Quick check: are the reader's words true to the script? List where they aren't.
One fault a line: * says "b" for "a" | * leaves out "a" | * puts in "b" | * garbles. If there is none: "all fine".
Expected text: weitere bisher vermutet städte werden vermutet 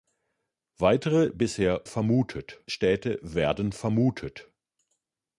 all fine